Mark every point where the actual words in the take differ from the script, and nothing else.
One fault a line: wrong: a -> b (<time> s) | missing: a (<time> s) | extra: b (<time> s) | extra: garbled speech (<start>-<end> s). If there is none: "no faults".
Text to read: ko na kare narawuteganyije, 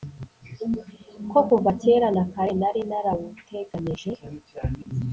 extra: kuva kera (1.5 s)
extra: nari (2.6 s)